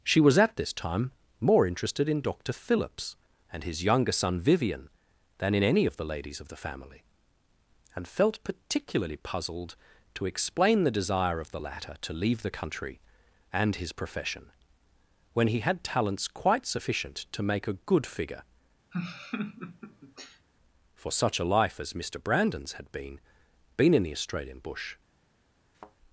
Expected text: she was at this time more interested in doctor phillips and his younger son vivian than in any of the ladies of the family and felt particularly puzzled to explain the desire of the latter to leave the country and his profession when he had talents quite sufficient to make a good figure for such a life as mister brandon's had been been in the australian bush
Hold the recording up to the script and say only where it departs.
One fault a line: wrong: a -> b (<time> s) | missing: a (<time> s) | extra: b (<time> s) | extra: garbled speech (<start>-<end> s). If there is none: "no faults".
no faults